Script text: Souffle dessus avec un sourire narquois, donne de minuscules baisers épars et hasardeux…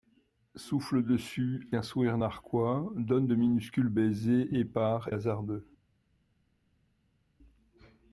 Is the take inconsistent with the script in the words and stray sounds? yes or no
yes